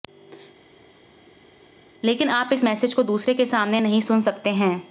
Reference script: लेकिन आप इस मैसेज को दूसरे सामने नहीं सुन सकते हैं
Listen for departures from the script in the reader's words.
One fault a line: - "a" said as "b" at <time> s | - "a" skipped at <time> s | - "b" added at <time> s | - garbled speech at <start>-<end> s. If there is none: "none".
- "के" added at 3.3 s